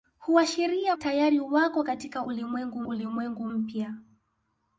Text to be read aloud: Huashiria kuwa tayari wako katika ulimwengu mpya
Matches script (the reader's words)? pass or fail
fail